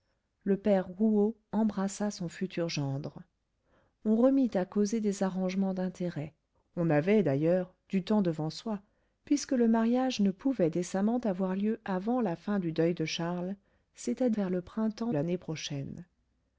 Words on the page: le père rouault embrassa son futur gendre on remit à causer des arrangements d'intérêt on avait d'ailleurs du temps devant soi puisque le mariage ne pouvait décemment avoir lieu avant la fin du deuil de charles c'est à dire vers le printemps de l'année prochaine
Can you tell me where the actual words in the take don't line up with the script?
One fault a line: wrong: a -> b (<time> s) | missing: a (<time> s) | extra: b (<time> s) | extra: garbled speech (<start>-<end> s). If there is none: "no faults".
missing: dire (14.3 s)
missing: de (15.1 s)